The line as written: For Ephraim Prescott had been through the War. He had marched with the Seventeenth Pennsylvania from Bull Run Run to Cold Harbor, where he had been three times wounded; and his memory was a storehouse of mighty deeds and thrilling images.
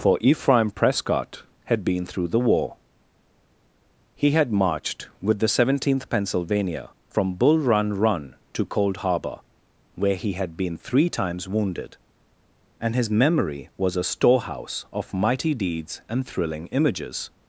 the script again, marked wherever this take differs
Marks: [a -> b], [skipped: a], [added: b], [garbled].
For Ephraim Prescott had been through the War. He had marched with the Seventeenth Pennsylvania from Bull Run Run to Cold Harbor, where he had been three times wounded; and his memory was a storehouse of mighty deeds and thrilling images.